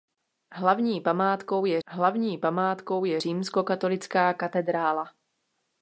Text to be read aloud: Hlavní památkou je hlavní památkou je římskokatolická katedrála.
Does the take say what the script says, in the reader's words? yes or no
yes